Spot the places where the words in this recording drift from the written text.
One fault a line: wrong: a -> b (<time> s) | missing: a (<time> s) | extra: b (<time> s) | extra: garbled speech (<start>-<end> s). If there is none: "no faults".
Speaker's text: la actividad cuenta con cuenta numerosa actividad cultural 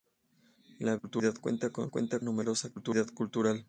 no faults